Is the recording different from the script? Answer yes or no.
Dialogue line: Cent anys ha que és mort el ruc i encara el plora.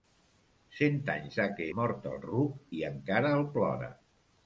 yes